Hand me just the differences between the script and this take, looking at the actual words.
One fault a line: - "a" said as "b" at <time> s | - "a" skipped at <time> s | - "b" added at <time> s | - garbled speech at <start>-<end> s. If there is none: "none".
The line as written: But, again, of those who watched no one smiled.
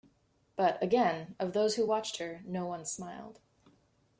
- "her" added at 2.2 s